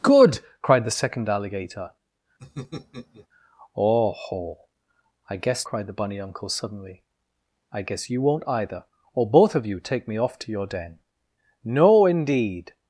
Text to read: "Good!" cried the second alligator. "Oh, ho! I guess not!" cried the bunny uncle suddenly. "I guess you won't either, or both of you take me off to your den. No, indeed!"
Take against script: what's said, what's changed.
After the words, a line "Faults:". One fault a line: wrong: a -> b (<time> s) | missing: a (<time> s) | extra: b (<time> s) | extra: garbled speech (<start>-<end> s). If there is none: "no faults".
"Good!" cried the second alligator. "Oh, ho! I guess!" cried the bunny uncle suddenly. "I guess you won't either, or both of you take me off to your den. No, indeed!"
Faults:
missing: not (5.7 s)